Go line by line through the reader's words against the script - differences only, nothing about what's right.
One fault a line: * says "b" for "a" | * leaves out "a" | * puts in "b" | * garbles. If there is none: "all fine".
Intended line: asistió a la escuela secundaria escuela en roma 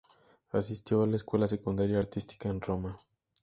* says "artística" for "escuela"